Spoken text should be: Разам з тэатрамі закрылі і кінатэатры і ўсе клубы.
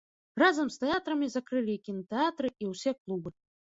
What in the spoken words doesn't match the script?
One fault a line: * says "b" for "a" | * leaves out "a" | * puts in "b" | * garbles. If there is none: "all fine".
all fine